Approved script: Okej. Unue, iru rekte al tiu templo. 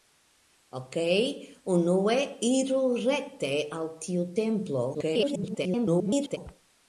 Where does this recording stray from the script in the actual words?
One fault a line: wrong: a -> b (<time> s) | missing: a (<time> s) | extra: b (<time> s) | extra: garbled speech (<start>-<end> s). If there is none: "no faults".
extra: garbled speech (4.9-6.4 s)